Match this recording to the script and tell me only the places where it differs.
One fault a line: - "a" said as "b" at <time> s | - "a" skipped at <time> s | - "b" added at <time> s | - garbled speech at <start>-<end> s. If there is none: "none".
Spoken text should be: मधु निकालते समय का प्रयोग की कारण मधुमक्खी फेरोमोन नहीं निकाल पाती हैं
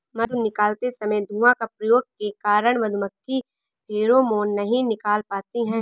- "धुआं" added at 1.2 s
- "की" said as "के" at 2.0 s